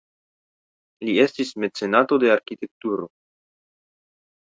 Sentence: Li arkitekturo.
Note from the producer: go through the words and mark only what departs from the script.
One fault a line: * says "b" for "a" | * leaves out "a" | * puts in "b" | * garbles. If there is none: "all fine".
* puts in "estis mecenato de"